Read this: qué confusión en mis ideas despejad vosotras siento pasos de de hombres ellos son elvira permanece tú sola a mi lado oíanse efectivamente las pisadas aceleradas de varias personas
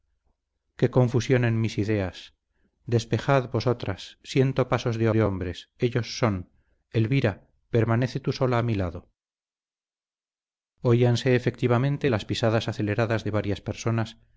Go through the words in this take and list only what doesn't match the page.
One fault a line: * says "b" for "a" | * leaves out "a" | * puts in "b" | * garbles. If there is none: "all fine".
all fine